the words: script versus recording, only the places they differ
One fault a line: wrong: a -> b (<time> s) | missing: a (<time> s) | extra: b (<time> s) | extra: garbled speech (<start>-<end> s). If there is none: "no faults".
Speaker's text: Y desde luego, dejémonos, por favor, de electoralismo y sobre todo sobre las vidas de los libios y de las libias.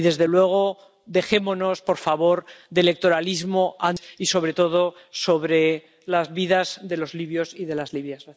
no faults